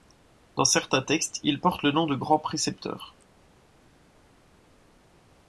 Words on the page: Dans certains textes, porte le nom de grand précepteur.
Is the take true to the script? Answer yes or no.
no